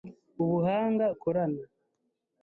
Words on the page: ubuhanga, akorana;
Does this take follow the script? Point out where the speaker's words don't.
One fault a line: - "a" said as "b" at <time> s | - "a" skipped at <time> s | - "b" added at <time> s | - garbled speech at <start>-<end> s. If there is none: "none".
none